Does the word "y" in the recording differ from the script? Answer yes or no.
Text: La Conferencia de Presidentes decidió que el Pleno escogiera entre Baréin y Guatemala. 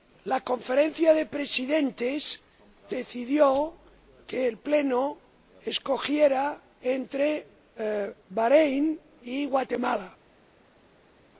no